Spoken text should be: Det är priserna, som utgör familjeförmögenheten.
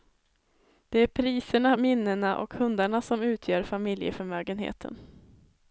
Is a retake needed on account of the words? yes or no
yes